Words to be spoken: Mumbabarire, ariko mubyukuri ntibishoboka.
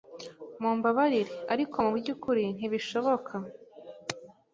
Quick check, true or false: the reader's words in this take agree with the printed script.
true